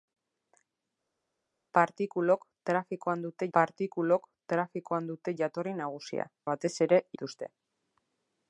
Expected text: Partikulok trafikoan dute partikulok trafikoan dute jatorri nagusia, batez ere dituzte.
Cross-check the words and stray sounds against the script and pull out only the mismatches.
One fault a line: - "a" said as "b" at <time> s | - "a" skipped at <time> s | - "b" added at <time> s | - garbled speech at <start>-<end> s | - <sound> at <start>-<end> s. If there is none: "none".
none